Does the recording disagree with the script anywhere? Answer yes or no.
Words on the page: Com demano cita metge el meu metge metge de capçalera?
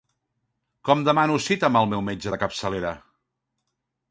yes